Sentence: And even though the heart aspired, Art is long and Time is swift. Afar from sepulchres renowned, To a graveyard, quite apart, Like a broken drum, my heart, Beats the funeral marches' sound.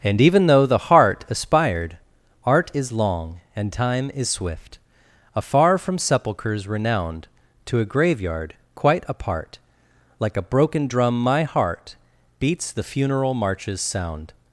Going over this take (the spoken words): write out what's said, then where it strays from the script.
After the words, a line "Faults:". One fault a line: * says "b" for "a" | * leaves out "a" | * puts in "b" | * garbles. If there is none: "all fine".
And even though the heart aspired, Art is long and Time is swift. Afar from sepulchres renowned, To a graveyard, quite apart, Like a broken drum, my heart, Beats the funeral marches' sound.
Faults:
all fine